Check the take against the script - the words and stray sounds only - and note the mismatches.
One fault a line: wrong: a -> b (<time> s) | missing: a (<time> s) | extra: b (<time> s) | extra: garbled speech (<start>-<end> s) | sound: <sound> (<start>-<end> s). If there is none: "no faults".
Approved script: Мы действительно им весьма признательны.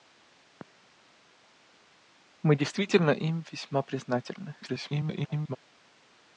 extra: garbled speech (4.6-5.6 s)